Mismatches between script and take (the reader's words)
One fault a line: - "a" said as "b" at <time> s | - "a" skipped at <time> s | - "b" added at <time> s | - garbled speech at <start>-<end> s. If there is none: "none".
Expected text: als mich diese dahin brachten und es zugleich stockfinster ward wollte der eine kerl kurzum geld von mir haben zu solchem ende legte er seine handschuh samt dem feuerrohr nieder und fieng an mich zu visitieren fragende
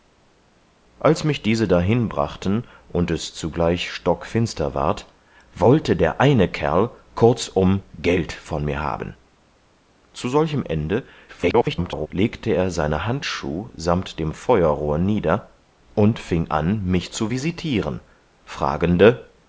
- garbled speech at 11.3-12.1 s